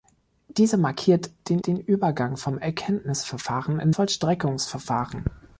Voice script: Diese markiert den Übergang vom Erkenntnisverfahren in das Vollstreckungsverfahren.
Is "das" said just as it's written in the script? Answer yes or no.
no